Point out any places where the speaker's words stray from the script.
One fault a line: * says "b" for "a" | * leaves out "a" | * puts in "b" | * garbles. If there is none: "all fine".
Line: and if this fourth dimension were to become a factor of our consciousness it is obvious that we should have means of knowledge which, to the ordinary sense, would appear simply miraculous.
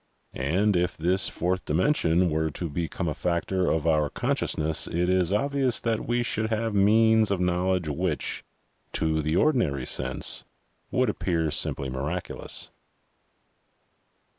all fine